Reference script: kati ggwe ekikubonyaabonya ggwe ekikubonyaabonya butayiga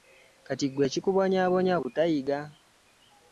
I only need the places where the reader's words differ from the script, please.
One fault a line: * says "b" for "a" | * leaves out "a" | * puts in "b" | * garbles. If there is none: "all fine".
* leaves out "ggwe ekikubonyaabonya"